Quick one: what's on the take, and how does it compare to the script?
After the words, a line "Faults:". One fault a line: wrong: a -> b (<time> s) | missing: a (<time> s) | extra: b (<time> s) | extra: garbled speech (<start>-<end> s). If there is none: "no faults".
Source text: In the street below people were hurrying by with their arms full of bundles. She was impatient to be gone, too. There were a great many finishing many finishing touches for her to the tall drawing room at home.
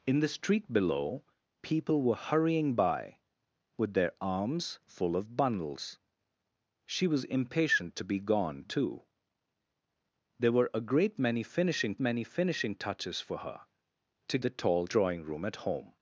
In the street below people were hurrying by with their arms full of bundles. She was impatient to be gone, too. There were a great many finishing many finishing touches for her to the tall drawing room at home.
Faults:
no faults